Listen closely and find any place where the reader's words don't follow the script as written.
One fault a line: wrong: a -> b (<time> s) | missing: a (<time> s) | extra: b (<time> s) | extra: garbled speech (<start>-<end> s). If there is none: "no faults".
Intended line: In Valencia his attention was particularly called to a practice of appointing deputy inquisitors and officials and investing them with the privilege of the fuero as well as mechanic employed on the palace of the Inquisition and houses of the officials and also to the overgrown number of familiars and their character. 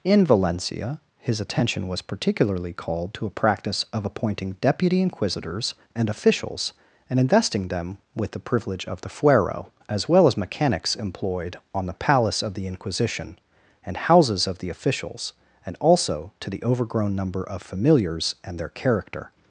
wrong: mechanic -> mechanics (10.3 s)